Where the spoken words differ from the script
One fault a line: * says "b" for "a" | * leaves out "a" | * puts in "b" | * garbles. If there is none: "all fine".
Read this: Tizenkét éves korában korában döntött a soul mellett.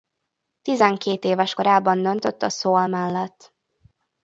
* leaves out "korában"